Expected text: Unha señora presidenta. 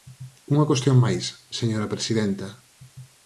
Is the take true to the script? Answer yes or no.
no